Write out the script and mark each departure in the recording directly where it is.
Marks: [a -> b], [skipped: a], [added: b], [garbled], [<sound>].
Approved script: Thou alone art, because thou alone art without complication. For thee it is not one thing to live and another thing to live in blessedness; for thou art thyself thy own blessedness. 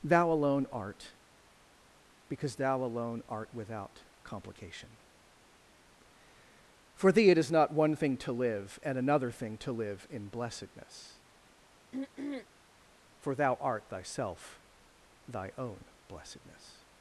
Thou alone art, because thou alone art without complication. For thee it is not one thing to live and another thing to live in blessedness; [throat clearing] for thou art thyself thy own blessedness.